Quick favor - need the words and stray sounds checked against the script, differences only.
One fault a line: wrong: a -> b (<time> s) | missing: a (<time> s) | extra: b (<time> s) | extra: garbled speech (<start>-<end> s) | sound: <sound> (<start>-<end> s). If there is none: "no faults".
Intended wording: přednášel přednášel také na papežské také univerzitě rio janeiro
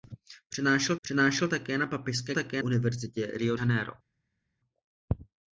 no faults